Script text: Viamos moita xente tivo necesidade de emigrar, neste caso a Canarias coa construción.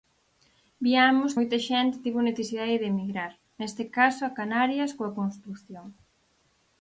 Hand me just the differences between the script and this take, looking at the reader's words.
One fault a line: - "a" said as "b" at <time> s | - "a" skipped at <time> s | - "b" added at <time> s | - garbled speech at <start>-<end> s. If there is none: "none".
none